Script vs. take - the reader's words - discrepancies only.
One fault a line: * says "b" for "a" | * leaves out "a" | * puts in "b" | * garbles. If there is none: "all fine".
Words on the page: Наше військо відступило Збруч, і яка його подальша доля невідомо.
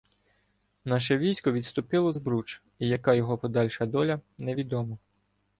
all fine